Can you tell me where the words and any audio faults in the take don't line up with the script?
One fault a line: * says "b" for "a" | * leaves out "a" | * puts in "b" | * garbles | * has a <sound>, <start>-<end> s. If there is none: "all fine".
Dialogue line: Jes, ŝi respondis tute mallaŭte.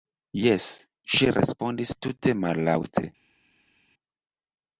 all fine